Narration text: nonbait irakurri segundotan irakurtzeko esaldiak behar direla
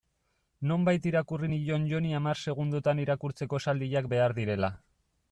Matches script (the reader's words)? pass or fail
fail